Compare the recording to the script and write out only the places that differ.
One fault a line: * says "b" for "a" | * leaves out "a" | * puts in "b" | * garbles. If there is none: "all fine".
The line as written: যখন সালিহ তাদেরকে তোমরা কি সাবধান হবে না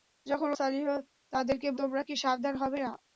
all fine